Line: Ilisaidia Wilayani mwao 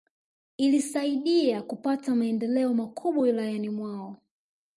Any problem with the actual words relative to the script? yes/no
yes